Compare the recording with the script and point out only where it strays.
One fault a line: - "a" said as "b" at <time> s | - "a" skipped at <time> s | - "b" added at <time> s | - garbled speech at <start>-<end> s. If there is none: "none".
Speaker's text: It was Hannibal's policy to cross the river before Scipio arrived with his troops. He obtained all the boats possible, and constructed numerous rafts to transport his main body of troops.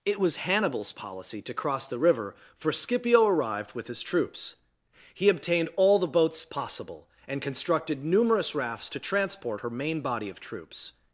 - "before" said as "for" at 2.5 s
- "his" said as "her" at 9.6 s